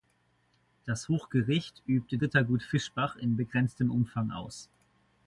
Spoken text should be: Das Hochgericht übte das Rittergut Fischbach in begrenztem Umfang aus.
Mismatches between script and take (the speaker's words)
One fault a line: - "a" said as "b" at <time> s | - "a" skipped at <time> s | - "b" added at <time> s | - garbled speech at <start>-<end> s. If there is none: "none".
- "das" skipped at 2.2 s